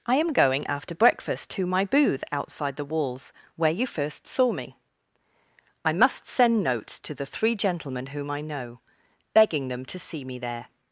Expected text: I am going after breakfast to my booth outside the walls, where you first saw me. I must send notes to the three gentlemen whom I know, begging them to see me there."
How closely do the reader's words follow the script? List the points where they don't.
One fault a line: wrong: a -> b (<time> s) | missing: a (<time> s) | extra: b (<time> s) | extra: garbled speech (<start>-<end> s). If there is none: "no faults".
no faults